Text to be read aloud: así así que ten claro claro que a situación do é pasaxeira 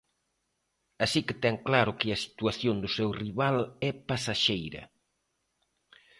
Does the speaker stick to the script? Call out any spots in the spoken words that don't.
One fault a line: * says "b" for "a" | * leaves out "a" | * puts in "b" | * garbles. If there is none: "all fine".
* leaves out "así"
* leaves out "claro"
* puts in "seu rival"